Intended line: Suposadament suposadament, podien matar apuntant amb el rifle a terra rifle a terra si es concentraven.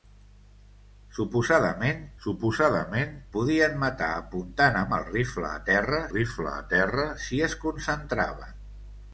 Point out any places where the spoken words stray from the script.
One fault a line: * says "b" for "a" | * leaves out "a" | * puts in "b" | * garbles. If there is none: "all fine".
all fine